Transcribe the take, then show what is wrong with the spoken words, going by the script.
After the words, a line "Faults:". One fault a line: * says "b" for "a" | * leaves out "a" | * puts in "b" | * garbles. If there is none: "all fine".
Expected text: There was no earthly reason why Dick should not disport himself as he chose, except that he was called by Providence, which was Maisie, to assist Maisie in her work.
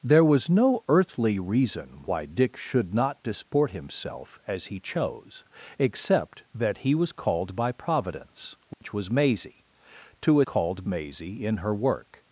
There was no earthly reason why Dick should not disport himself as he chose, except that he was called by Providence, which was Maisie, to called Maisie in her work.
Faults:
* says "called" for "assist"